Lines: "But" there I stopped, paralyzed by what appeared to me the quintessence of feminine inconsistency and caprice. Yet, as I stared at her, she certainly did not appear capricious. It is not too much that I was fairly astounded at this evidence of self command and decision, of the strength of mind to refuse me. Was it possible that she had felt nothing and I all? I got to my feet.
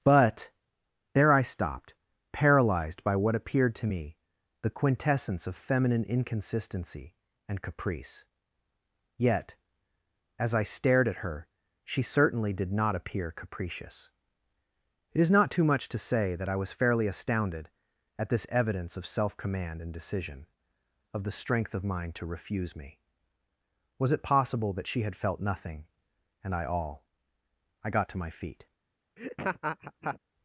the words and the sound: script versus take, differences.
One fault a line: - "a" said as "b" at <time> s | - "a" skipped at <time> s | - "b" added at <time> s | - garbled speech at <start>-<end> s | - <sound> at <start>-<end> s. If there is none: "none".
- "to say" added at 15.9 s
- laugh at 29.2-30.2 s